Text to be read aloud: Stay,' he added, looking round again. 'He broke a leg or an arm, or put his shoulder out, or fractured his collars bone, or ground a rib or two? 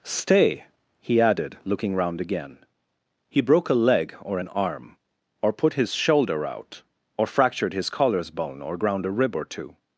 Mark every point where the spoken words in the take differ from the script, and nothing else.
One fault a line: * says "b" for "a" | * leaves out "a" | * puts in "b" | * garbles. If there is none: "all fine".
all fine